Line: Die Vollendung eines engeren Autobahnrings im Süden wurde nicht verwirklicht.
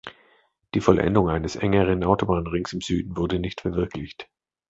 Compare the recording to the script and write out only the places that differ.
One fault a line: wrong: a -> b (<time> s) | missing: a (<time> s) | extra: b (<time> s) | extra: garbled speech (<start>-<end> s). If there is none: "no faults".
no faults